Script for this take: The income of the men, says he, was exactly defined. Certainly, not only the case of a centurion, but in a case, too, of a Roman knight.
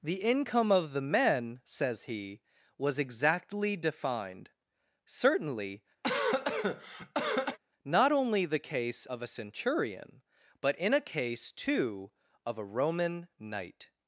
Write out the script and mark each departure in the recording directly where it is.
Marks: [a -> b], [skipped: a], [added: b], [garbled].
The income of the men, says he, was exactly defined. Certainly, not only the case of a centurion, but in a case, too, of a Roman knight.